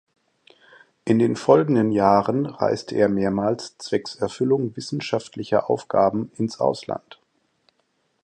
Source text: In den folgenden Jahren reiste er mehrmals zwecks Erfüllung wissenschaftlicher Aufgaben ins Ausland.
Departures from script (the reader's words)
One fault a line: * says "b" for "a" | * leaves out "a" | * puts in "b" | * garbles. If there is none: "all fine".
all fine